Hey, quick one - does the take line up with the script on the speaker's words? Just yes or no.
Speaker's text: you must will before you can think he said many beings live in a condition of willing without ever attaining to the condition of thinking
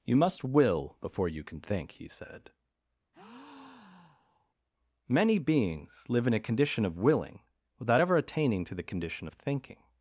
yes